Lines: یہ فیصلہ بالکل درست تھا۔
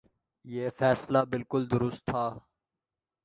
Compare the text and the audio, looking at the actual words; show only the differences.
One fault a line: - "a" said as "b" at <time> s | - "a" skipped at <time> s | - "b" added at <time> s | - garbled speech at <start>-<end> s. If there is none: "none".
none